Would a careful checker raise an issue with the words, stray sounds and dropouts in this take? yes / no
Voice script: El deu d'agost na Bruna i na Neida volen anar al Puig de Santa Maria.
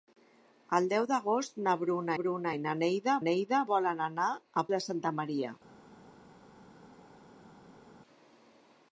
yes